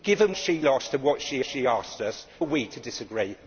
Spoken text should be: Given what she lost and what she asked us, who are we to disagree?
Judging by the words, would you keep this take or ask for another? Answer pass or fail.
fail